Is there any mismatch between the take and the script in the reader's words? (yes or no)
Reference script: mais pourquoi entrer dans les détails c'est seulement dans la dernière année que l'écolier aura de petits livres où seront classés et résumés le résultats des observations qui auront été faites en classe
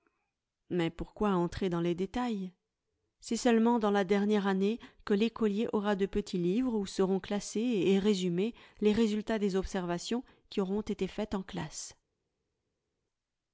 yes